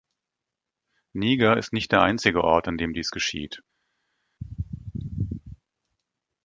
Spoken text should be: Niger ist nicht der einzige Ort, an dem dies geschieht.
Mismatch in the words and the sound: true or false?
false